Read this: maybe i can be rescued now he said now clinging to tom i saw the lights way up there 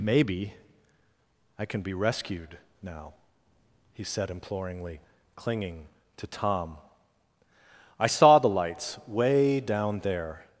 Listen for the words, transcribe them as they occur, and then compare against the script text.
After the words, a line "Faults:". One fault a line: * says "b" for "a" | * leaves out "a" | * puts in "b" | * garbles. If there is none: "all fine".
maybe i can be rescued now he said imploringly clinging to tom i saw the lights way down there
Faults:
* says "imploringly" for "now"
* says "down" for "up"